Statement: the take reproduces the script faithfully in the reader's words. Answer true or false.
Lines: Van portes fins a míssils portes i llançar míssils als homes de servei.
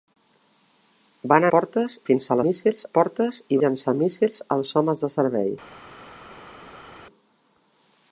true